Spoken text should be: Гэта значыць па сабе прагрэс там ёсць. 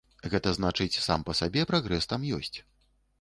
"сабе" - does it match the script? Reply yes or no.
yes